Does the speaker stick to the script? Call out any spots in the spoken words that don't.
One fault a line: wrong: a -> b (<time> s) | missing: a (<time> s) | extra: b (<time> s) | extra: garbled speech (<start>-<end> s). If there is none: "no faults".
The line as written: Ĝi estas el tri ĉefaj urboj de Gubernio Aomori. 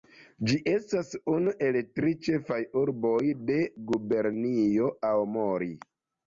extra: unu (1.3 s)